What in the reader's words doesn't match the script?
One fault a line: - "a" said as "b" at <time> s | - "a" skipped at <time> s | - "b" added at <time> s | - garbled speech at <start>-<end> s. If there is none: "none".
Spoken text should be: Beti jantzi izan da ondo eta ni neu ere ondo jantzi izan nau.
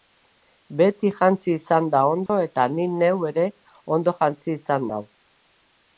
none